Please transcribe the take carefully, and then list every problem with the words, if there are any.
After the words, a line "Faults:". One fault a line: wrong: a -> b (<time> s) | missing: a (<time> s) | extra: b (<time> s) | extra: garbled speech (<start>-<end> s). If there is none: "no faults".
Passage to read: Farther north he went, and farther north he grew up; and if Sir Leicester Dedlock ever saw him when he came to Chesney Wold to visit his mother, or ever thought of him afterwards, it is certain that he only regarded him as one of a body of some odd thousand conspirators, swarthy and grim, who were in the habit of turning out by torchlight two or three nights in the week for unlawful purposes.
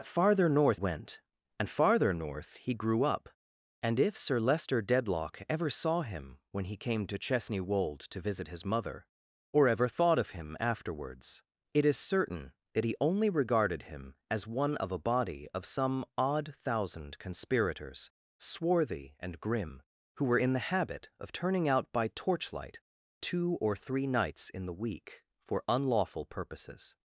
Farther north went, and farther north he grew up; and if Sir Leicester Dedlock ever saw him when he came to Chesney Wold to visit his mother, or ever thought of him afterwards, it is certain that he only regarded him as one of a body of some odd thousand conspirators, swarthy and grim, who were in the habit of turning out by torchlight two or three nights in the week for unlawful purposes.
Faults:
missing: he (0.8 s)